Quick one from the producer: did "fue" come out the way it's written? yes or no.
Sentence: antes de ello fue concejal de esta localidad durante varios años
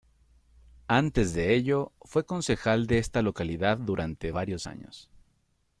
yes